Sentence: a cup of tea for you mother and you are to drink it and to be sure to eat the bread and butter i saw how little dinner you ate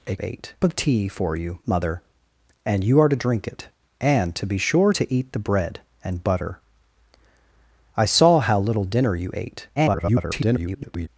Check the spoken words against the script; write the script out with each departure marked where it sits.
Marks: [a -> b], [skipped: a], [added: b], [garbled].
a [cup -> ate] of tea for you mother and you are to drink it and to be sure to eat the bread and butter i saw how little dinner you ate [garbled]